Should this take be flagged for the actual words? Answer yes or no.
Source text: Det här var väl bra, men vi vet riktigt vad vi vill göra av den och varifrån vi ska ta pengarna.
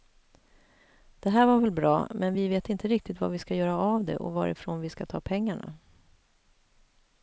yes